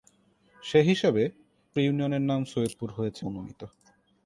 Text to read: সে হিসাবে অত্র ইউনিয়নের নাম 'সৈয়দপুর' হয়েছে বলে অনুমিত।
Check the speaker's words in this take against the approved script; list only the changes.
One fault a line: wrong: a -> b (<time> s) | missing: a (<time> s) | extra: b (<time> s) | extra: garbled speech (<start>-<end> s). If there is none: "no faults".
missing: অত্র (1.2 s)
missing: বলে (3.2 s)